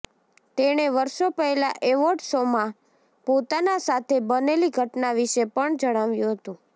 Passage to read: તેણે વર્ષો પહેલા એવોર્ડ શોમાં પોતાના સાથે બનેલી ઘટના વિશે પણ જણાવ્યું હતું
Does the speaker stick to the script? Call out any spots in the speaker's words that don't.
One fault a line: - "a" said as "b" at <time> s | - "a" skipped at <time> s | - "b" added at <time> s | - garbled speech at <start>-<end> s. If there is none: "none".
none